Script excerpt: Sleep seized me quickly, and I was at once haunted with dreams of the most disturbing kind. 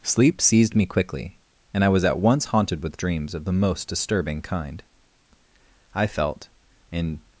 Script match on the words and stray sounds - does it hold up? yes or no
no